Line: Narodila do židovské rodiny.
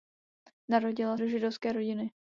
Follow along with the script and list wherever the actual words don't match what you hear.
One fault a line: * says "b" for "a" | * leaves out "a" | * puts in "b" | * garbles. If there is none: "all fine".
all fine